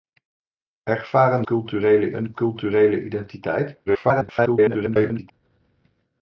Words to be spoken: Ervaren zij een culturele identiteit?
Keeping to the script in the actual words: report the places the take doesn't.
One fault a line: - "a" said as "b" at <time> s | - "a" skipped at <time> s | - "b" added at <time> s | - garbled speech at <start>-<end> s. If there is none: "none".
- "zij" said as "culturele" at 1.4 s
- garbled speech at 3.9-5.3 s